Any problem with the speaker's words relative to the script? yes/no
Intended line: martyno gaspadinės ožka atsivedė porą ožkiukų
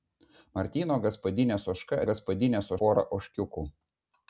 yes